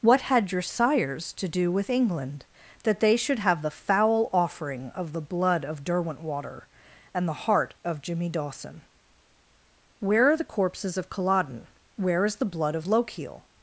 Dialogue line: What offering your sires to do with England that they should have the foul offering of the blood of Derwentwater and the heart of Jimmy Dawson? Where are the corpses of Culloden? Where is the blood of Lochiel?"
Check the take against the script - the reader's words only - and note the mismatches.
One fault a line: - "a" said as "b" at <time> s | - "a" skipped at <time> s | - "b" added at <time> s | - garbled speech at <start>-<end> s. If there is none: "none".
- "offering" said as "had" at 0.2 s